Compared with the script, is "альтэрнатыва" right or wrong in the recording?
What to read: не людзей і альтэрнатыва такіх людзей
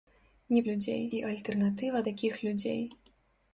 right